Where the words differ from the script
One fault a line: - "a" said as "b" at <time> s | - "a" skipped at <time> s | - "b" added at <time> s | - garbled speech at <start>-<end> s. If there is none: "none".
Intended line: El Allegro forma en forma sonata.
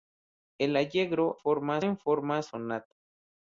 none